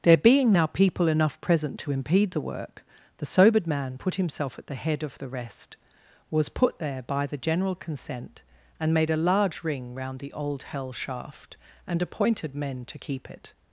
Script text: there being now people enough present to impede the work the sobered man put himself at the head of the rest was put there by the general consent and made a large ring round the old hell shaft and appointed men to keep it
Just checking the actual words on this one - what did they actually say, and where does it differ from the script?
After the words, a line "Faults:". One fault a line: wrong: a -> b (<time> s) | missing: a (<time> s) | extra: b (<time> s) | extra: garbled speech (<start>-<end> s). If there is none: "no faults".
there being now people enough present to impede the work the sobered man put himself at the head of the rest was put there by the general consent and made a large ring round the old hell shaft and appointed men to keep it
Faults:
no faults